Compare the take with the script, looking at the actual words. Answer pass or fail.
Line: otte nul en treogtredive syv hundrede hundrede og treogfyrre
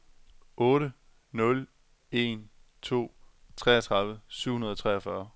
fail